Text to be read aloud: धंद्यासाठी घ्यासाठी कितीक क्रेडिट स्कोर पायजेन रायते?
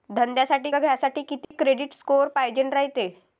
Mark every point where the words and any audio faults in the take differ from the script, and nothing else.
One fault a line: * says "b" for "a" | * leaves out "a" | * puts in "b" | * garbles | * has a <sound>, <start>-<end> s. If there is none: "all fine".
* has a dropout, 1.4-1.5 s